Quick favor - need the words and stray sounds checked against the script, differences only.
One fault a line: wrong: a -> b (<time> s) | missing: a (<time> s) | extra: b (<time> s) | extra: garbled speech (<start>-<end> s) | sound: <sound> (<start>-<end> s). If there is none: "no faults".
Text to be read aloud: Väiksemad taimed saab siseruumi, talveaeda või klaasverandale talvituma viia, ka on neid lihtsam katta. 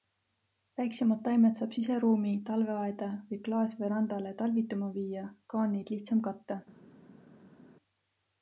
no faults